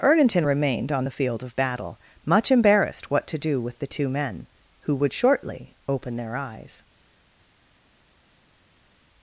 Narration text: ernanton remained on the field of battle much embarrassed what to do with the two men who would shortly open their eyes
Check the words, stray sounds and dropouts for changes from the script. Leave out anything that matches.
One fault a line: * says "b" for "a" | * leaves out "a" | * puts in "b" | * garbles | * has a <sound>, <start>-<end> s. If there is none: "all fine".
all fine